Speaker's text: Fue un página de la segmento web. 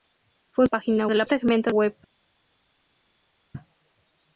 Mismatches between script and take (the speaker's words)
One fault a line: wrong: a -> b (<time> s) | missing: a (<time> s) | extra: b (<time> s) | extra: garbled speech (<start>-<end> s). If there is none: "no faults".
no faults